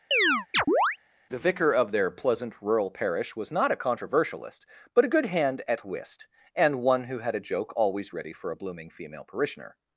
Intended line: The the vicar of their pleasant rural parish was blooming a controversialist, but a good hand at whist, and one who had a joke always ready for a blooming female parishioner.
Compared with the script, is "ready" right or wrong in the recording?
right